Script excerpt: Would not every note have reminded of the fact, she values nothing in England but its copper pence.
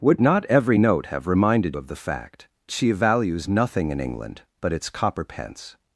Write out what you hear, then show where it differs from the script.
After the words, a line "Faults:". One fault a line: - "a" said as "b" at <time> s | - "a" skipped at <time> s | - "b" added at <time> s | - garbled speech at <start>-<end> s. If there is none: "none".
Would not every note have reminded of the fact, she values nothing in England but its copper pence.
Faults:
none